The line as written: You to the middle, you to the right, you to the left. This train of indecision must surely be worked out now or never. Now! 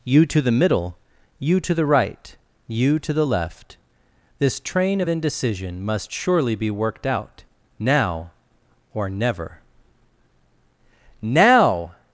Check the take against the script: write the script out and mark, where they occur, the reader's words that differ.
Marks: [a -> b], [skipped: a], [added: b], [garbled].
You to the middle, you to the right, you to the left. This train of indecision must surely be worked out now or never. Now!